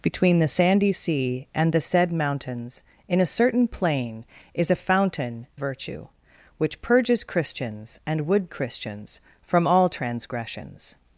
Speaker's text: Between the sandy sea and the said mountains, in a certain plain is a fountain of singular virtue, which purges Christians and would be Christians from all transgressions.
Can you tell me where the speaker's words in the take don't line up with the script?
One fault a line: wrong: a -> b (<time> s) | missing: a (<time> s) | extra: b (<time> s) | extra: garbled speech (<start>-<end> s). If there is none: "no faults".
missing: of singular (5.5 s)
missing: be (8.5 s)